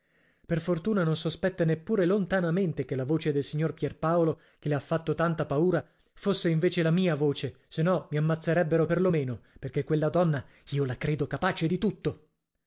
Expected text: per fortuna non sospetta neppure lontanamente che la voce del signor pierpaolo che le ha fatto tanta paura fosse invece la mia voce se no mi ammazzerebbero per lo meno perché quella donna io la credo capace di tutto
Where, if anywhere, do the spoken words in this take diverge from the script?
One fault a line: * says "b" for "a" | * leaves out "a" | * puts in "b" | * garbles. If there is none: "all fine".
all fine